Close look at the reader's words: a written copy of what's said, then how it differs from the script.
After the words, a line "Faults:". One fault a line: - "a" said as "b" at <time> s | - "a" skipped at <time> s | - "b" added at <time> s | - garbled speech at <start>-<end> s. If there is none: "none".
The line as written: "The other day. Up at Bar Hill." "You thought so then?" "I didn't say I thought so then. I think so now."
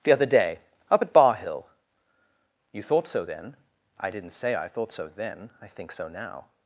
"The other day. Up at Bar Hill." "You thought so then?" "I didn't say I thought so then. I think so now."
Faults:
none